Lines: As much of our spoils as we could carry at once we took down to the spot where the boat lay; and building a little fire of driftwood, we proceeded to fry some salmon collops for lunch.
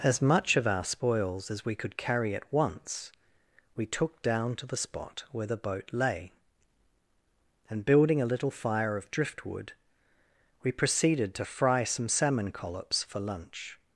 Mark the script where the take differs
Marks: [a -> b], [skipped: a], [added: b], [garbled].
As much of our spoils as we could carry at once we took down to the spot where the boat lay; and building a little fire of driftwood, we proceeded to fry some salmon collops for lunch.